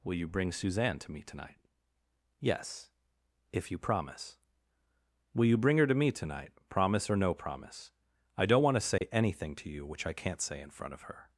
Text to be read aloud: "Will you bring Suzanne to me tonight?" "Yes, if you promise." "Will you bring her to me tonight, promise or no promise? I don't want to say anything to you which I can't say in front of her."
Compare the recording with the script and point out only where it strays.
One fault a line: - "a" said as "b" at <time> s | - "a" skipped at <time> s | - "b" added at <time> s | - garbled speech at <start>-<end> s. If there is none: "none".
none